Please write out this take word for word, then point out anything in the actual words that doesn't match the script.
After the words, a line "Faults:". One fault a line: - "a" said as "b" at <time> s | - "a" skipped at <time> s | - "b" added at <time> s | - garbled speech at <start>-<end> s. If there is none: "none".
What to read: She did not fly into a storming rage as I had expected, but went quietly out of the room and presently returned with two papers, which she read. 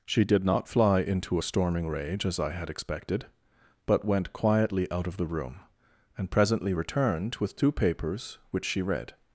She did not fly into a storming rage as I had expected, but went quietly out of the room and presently returned with two papers, which she read.
Faults:
none